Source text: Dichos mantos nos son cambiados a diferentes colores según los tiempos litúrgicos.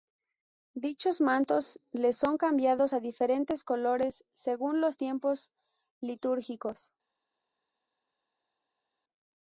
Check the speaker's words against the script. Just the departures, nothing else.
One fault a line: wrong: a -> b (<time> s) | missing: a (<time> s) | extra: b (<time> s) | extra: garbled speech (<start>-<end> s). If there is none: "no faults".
wrong: nos -> les (1.9 s)